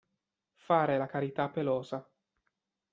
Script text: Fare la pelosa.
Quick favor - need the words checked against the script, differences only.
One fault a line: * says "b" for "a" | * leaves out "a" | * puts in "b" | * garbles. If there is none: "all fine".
* puts in "carità"